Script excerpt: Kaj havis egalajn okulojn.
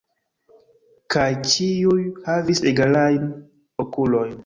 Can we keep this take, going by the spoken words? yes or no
no